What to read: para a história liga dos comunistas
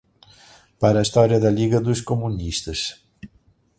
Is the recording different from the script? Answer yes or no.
yes